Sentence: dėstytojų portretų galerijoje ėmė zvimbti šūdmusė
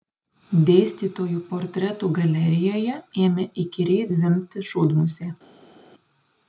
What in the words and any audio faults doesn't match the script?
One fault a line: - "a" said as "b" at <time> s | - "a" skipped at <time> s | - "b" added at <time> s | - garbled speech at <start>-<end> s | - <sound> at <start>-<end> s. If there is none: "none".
- "įkyriai" added at 3.6 s